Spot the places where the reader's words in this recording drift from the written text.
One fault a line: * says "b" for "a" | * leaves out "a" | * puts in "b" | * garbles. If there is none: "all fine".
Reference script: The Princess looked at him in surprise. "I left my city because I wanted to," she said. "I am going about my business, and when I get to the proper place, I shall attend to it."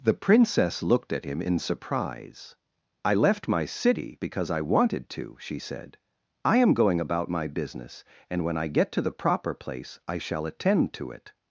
all fine